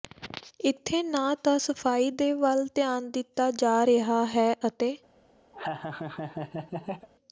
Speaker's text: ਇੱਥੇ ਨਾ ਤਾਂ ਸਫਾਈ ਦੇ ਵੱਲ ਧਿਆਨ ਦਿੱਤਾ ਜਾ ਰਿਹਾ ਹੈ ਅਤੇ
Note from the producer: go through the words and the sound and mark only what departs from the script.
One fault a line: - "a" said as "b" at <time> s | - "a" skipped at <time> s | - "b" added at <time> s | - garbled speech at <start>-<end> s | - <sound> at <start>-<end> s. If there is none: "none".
- laugh at 5.5-7.1 s